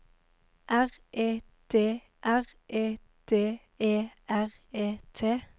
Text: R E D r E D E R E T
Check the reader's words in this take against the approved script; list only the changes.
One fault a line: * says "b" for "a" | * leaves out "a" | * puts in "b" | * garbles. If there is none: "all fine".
all fine